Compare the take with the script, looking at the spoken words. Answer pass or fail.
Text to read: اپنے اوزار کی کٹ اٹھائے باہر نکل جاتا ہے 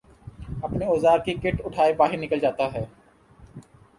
pass